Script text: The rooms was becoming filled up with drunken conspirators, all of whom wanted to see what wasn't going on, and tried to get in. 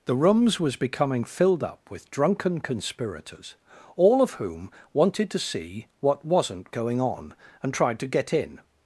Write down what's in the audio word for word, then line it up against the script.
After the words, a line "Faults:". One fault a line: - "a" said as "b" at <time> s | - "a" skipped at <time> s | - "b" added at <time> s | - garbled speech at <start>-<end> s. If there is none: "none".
The rooms was becoming filled up with drunken conspirators, all of whom wanted to see what wasn't going on, and tried to get in.
Faults:
none